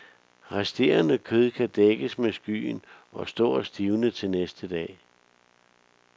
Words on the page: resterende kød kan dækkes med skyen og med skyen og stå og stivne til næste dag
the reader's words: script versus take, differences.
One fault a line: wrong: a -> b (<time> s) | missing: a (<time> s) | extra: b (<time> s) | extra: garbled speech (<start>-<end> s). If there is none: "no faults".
missing: med skyen og (3.3 s)